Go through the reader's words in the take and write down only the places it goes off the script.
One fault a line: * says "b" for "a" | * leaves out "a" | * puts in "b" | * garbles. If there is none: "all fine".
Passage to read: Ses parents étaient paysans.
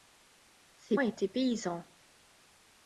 * leaves out "parents"